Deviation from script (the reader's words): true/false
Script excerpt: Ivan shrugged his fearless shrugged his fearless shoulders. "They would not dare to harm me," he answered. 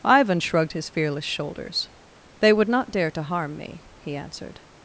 true